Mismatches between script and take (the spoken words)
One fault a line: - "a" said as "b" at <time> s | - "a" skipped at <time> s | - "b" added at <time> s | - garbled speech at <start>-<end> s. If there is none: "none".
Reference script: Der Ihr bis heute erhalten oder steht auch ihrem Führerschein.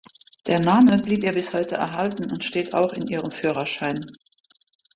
- "Name blieb" added at 0.6 s
- "oder" said as "und" at 2.3 s
- "in" added at 2.9 s